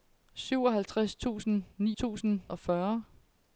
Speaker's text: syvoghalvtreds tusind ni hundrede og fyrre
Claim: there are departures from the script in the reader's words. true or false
true